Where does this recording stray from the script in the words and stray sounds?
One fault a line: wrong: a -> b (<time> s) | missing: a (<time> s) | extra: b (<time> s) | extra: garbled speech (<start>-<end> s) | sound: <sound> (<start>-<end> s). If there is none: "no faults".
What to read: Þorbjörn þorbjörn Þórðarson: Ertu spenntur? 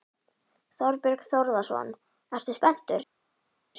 missing: þorbjörn (1.2 s)